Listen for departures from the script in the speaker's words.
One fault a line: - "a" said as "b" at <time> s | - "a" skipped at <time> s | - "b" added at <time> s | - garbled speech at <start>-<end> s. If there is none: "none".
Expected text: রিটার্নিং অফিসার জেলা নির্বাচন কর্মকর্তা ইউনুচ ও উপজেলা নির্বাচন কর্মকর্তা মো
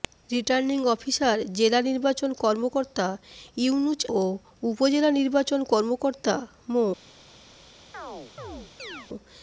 none